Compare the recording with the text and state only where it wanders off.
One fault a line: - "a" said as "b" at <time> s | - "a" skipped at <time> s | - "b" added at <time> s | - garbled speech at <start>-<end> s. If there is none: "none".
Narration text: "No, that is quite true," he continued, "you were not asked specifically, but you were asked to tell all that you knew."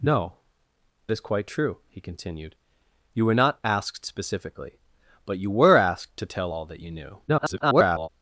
- "that" skipped at 0.3 s
- garbled speech at 7.3-8.1 s